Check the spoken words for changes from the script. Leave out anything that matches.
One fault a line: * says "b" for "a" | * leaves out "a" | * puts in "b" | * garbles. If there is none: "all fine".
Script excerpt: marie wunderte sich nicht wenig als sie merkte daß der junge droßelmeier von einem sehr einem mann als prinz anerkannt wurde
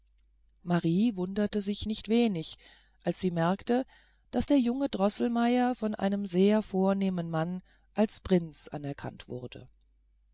* says "vornehmen" for "einem"